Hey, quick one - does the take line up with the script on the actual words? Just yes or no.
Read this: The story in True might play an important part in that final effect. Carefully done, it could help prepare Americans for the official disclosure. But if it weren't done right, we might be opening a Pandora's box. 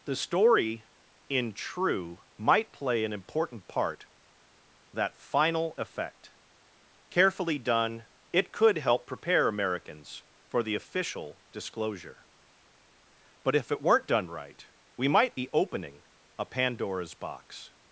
no